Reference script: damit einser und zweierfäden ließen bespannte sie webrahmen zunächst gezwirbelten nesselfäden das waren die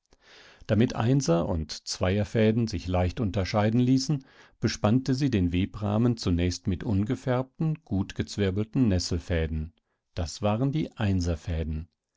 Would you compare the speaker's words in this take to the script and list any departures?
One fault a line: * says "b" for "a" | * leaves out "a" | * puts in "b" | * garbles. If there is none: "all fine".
* puts in "sich leicht unterscheiden"
* puts in "den"
* puts in "mit ungefärbten gut"